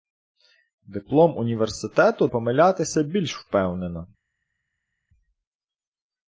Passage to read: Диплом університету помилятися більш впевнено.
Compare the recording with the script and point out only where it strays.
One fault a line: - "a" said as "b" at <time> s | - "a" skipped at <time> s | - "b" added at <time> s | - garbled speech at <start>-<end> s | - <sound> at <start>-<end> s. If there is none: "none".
none